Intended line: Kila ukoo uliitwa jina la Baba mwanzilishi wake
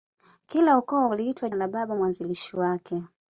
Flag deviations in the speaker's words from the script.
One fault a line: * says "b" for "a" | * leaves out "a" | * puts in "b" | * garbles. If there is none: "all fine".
* leaves out "jina"